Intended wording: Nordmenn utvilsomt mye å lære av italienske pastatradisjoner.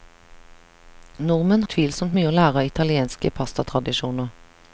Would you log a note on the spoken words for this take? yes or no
no